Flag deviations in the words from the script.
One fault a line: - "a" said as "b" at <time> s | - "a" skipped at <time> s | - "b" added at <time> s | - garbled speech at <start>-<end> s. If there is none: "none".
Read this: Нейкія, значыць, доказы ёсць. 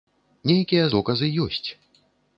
- "значыць" skipped at 0.9 s